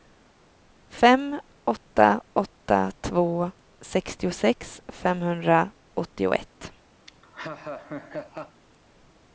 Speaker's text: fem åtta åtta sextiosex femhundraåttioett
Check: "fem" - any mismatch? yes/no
no